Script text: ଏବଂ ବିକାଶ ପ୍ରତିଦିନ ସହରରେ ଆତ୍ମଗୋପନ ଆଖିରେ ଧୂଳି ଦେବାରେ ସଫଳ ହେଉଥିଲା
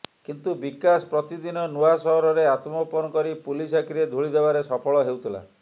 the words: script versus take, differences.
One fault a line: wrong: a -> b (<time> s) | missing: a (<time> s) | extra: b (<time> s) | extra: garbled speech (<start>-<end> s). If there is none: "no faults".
wrong: ଏବଂ -> କିନ୍ତୁ (0.3 s)
extra: ନୂଆ (1.7 s)
extra: କରି ପୁଲିସ (3.1 s)